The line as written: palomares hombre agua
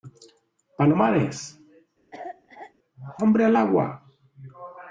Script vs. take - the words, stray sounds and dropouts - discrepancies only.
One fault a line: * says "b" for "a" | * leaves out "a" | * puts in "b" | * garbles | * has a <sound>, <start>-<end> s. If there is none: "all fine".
* has a cough, 2.1-2.7 s
* puts in "al"